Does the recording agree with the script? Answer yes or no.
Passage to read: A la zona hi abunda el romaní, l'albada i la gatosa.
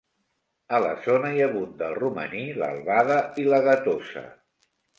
yes